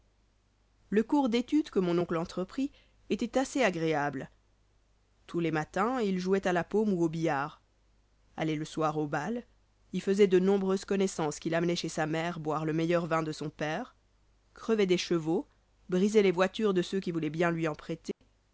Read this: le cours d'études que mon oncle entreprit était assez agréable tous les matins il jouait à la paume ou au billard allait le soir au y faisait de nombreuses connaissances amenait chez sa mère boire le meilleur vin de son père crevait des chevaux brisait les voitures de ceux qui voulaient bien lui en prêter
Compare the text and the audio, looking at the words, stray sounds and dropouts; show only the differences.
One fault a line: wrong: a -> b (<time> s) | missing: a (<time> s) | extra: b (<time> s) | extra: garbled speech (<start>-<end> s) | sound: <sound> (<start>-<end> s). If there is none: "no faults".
extra: bal (9.1 s)
extra: qu'il (11.4 s)
sound: dropout (18.1-18.2 s)